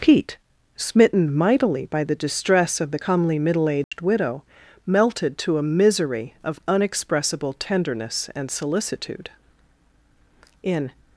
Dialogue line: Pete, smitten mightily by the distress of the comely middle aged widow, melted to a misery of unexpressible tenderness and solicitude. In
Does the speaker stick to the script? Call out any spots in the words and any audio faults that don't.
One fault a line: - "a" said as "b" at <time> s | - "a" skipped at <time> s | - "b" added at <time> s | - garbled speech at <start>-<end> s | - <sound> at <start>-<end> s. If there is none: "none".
- dropout at 3.8-3.9 s